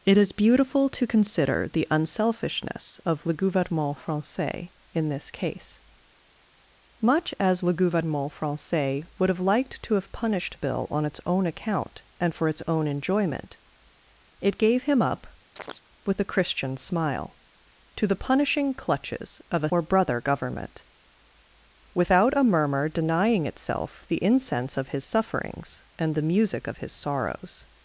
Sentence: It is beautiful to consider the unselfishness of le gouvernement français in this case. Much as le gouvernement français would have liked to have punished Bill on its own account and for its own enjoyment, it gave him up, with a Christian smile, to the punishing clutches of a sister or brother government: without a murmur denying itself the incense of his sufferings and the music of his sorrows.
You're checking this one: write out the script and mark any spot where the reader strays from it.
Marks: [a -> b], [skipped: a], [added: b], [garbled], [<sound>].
It is beautiful to consider the unselfishness of le gouvernement français in this case. Much as le gouvernement français would have liked to have punished Bill on its own account and for its own enjoyment, it gave him up, [chirp] with a Christian smile, to the punishing clutches of a [skipped: sister] or brother government: without a murmur denying itself the incense of his sufferings and the music of his sorrows.